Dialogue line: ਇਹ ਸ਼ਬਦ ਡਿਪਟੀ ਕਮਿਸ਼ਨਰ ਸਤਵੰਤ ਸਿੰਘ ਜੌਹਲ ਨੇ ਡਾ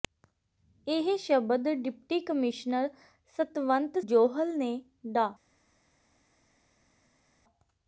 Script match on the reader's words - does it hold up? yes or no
no